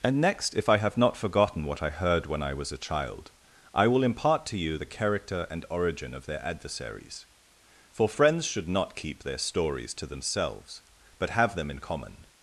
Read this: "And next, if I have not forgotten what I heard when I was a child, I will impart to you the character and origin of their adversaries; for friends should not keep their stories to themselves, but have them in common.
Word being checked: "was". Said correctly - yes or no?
yes